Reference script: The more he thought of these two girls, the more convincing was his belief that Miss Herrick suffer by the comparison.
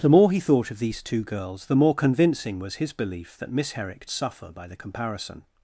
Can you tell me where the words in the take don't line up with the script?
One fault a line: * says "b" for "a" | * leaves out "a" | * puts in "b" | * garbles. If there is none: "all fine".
all fine